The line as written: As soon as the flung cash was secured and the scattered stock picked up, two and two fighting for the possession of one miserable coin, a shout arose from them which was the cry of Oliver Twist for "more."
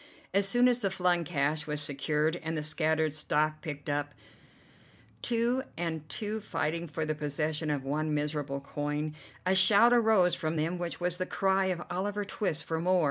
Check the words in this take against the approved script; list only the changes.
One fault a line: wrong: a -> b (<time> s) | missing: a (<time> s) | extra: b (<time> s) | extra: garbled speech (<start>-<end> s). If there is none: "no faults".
no faults